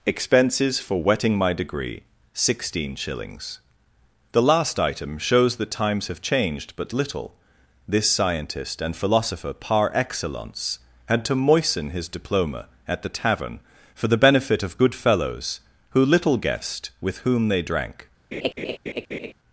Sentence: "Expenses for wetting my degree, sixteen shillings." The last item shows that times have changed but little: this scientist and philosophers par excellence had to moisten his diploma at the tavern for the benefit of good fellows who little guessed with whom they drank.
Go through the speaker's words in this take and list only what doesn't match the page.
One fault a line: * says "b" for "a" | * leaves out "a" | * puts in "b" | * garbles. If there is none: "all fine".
* says "philosopher" for "philosophers"